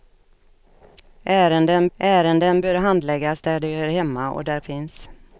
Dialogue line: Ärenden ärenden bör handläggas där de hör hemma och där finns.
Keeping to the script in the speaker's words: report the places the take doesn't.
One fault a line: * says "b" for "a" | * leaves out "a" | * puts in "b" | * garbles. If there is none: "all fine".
all fine